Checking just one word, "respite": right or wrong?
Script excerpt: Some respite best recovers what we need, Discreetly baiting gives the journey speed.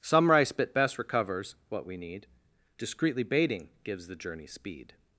wrong